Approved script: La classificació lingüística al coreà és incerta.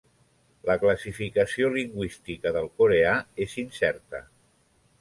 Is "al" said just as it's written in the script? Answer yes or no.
no